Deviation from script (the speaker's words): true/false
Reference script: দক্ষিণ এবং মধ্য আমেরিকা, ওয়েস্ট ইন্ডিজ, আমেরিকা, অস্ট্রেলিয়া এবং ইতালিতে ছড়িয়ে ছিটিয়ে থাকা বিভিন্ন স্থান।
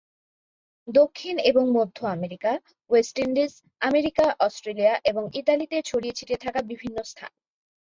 false